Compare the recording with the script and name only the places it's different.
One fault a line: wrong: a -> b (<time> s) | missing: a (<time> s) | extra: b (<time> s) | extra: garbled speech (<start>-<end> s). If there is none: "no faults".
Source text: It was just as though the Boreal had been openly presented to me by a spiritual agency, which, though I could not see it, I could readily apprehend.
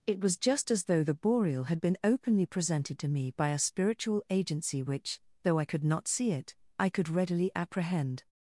no faults